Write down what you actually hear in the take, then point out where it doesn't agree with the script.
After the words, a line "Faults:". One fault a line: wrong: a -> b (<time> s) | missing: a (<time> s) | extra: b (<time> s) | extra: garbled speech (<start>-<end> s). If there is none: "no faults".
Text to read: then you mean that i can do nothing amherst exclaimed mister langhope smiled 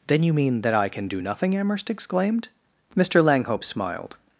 then you mean that i can do nothing amherst exclaimed mister langhope smiled
Faults:
no faults